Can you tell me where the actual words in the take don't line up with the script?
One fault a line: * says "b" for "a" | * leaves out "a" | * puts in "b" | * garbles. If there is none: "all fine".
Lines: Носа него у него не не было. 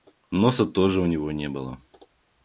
* says "тоже" for "него"
* leaves out "не"